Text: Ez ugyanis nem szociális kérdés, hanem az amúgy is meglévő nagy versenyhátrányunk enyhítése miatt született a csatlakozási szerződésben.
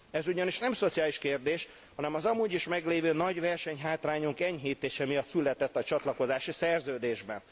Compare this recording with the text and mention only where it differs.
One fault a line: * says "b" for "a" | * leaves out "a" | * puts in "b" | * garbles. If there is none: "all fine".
all fine